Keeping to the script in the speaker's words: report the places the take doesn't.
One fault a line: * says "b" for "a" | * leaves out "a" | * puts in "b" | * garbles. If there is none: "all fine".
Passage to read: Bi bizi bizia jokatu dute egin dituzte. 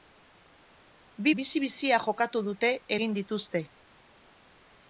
all fine